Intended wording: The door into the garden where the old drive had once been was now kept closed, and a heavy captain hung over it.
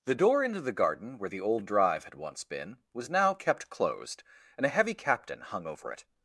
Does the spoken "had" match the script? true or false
true